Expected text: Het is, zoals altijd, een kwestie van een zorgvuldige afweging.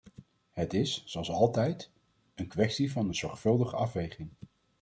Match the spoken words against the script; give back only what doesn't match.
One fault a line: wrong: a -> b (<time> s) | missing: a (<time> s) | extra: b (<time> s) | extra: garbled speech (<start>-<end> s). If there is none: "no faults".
no faults